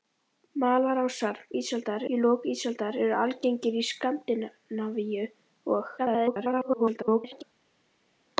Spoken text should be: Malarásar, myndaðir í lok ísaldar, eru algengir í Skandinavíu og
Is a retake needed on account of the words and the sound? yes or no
yes